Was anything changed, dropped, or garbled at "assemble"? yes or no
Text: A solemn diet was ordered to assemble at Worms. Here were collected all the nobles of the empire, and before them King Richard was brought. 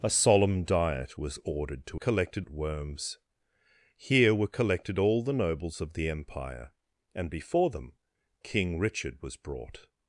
yes